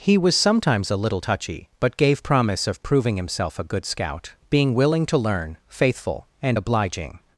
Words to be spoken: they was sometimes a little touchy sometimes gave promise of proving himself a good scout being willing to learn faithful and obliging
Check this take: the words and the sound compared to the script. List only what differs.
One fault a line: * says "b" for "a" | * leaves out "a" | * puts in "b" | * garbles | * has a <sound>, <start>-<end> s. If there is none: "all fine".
* says "he" for "they"
* says "but" for "sometimes"